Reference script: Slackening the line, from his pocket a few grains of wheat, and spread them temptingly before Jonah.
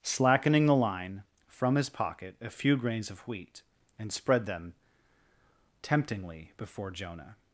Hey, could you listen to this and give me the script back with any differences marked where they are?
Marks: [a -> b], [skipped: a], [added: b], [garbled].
Slackening the line, from his pocket a few grains of wheat, and spread them temptingly before Jonah.